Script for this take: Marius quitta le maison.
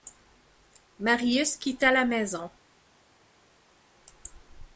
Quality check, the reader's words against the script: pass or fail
fail